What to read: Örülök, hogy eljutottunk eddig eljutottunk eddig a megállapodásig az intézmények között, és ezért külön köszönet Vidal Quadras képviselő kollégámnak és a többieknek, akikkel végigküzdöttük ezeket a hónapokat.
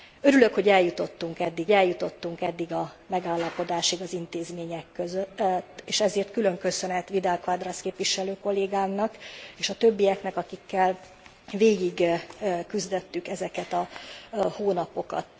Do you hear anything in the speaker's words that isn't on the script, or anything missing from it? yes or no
no